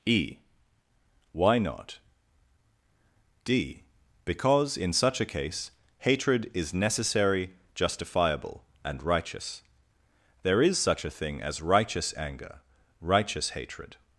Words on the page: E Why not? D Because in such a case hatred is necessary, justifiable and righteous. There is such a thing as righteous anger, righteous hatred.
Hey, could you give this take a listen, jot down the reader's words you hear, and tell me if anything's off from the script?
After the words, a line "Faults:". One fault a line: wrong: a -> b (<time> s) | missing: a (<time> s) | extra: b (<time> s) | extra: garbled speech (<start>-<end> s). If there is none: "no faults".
E Why not? D Because in such a case hatred is necessary, justifiable and righteous. There is such a thing as righteous anger, righteous hatred.
Faults:
no faults